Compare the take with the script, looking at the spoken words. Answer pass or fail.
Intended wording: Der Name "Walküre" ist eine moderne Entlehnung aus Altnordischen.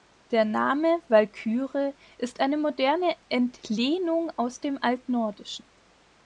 fail